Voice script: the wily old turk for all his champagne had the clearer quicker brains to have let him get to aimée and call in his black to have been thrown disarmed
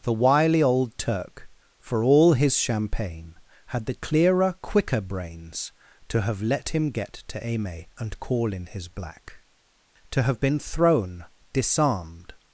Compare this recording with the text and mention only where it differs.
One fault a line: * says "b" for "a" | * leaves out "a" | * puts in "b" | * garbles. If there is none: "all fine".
all fine